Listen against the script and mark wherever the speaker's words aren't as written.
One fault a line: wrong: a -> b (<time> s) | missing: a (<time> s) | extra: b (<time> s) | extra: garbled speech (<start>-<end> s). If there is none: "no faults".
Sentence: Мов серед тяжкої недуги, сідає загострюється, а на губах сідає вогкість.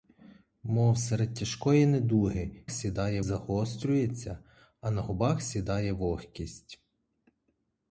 no faults